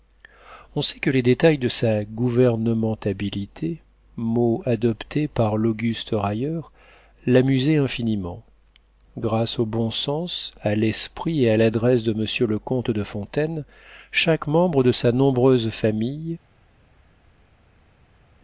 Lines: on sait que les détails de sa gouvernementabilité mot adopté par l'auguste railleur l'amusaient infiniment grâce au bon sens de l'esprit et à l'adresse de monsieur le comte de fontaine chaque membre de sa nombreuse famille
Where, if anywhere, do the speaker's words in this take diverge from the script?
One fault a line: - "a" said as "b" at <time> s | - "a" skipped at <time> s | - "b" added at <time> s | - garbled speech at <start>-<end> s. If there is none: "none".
- "de" said as "à" at 10.6 s